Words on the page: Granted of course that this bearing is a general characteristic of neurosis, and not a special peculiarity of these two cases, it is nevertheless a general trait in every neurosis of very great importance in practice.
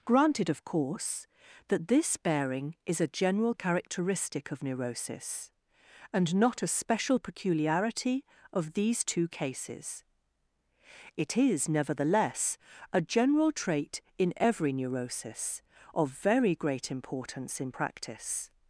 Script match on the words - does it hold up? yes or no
yes